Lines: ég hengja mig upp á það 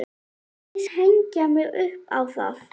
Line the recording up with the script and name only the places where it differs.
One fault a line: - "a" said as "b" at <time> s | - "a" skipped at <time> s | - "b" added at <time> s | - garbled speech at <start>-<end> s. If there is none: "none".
none